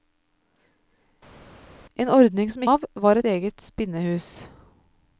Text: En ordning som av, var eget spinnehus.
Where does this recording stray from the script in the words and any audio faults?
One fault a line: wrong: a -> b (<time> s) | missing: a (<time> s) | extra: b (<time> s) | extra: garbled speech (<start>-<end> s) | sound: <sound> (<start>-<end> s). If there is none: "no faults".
no faults